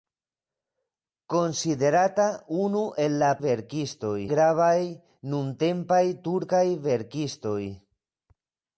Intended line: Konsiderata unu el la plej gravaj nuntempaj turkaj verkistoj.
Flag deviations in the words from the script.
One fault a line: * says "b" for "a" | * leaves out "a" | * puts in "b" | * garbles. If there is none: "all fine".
* says "verkistoj" for "plej"